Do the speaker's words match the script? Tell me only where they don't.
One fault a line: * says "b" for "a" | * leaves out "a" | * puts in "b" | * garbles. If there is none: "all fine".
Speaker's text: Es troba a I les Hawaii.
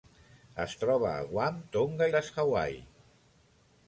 * puts in "Guam Tonga"